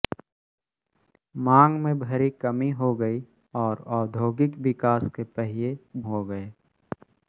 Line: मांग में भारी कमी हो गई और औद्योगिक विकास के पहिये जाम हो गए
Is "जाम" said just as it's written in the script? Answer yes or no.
no